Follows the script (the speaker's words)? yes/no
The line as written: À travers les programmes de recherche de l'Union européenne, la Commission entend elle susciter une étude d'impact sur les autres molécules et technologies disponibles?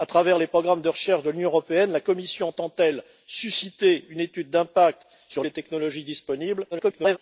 no